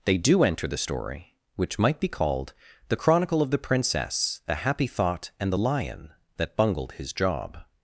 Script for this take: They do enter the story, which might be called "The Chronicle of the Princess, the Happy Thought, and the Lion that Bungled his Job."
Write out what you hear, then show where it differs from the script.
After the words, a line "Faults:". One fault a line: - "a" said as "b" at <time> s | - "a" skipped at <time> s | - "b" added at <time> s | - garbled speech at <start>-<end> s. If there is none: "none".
They do enter the story, which might be called "The Chronicle of the Princess, the Happy Thought, and the Lion that Bungled his Job."
Faults:
none